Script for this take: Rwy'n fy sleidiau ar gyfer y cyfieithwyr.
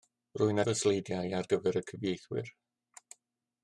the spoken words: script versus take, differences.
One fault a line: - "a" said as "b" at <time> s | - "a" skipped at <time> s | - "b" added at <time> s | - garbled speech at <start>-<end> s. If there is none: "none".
none